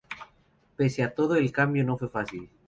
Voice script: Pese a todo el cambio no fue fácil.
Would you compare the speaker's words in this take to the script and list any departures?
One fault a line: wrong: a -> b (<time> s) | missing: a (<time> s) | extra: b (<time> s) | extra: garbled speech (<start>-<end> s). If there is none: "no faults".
no faults